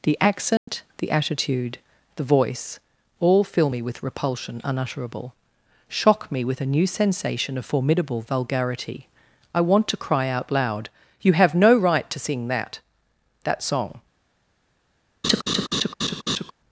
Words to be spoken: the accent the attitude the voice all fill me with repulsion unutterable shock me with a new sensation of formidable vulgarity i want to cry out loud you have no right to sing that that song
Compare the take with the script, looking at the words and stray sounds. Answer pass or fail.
fail